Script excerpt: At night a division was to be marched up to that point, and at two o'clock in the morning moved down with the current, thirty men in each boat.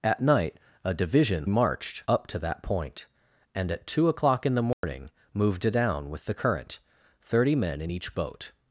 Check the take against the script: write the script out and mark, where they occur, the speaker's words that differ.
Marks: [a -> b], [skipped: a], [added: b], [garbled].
At night a division [skipped: was to be] marched up to that point, and at two o'clock in the morning moved down with the current, thirty men in each boat.